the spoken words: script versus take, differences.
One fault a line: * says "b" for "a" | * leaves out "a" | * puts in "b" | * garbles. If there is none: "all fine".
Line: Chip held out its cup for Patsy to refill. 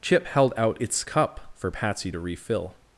all fine